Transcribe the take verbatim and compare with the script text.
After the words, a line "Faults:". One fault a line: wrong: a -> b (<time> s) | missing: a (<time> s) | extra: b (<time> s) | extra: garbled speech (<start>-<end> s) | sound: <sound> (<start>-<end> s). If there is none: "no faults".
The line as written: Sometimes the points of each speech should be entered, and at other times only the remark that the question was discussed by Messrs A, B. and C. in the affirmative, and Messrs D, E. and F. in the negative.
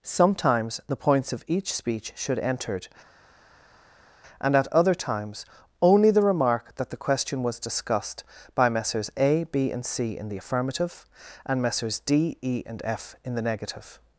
Sometimes the points of each speech should entered, and at other times only the remark that the question was discussed by Messrs A, B. and C. in the affirmative, and Messrs D, E. and F. in the negative.
Faults:
missing: be (2.4 s)